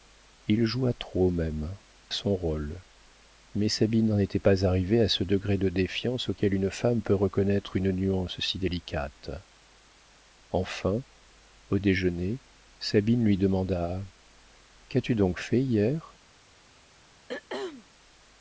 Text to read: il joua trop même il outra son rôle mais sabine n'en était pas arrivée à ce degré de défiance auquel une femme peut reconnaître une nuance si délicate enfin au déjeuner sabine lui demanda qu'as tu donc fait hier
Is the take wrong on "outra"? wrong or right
wrong